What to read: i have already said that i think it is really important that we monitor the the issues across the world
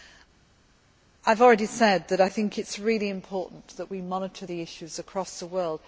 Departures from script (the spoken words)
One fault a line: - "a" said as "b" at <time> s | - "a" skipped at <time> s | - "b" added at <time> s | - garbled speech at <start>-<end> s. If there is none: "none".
- "the" skipped at 4.6 s